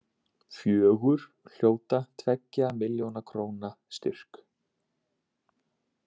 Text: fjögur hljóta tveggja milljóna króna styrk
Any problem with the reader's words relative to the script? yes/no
no